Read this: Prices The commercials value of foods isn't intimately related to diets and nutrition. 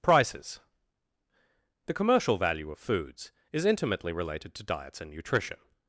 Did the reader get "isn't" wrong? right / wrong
wrong